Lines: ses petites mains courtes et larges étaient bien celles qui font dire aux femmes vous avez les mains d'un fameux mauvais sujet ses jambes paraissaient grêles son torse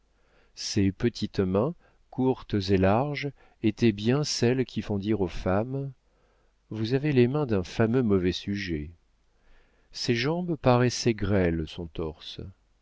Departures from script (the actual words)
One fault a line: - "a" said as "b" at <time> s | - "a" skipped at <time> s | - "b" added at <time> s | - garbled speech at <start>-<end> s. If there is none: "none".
none